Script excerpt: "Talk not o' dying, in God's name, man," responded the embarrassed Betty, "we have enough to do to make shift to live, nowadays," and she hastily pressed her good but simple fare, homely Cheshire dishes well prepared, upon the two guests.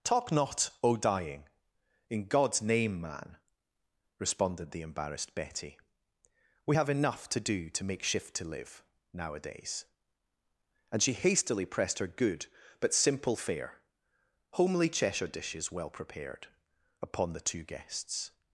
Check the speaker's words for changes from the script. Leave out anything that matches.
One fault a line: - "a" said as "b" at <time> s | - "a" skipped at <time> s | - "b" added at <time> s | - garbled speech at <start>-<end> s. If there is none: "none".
none